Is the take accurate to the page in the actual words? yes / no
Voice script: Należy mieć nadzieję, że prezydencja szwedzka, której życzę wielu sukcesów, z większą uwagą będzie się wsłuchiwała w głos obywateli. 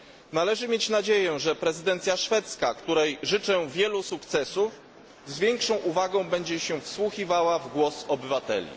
yes